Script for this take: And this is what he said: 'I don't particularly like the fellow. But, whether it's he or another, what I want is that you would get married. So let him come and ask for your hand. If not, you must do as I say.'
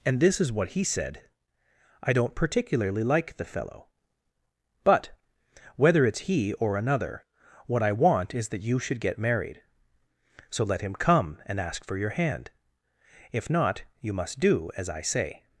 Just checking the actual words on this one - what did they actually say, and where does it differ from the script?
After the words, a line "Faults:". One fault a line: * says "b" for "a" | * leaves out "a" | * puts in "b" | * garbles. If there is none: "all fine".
And this is what he said: 'I don't particularly like the fellow. But, whether it's he or another, what I want is that you should get married. So let him come and ask for your hand. If not, you must do as I say.'
Faults:
* says "should" for "would"